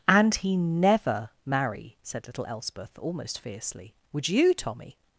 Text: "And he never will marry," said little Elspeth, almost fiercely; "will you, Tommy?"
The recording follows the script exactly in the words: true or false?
false